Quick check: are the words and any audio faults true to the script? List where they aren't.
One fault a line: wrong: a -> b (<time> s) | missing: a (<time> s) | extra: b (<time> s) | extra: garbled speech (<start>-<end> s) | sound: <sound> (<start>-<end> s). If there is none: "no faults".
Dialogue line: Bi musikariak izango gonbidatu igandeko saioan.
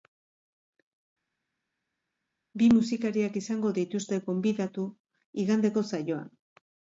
extra: dituzte (3.8 s)